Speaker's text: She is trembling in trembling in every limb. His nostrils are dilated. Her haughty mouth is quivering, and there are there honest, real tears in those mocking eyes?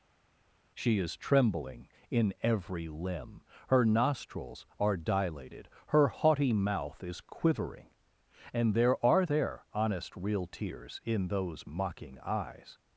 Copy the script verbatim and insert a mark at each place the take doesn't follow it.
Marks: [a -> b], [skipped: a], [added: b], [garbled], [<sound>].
She is trembling in [skipped: trembling in] every limb. [His -> Her] nostrils are dilated. Her haughty mouth is quivering, and there are there honest, real tears in those mocking eyes?